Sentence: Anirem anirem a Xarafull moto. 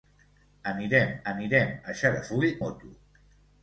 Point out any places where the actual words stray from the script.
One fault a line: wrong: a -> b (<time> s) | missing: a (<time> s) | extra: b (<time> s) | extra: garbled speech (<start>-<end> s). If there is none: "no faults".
no faults